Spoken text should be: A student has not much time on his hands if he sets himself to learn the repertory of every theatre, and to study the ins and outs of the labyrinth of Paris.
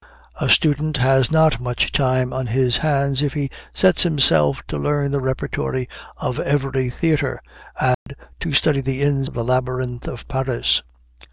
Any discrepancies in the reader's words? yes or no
yes